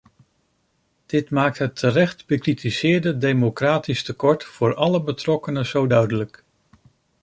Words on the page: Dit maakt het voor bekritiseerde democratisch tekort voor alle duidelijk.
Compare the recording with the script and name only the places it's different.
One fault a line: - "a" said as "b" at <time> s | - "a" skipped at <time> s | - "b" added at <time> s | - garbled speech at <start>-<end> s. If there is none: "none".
- "voor" said as "terecht" at 1.8 s
- "betrokkenen zo" added at 5.0 s